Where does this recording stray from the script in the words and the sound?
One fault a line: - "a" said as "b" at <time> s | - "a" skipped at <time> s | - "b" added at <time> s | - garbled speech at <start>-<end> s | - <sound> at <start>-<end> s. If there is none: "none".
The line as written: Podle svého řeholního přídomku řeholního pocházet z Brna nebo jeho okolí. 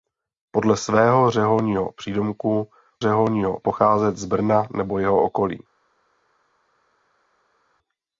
none